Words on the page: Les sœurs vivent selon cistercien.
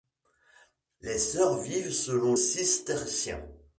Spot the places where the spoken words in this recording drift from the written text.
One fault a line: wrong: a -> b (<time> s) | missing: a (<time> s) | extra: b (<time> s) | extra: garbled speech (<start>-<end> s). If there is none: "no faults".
no faults